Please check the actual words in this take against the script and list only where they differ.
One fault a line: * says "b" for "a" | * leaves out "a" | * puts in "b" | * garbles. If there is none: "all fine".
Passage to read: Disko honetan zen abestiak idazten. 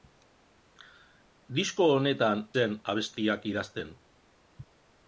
all fine